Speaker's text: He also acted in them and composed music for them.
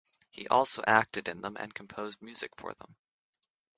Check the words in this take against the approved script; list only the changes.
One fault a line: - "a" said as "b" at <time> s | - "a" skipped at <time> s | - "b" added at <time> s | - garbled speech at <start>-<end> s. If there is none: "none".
none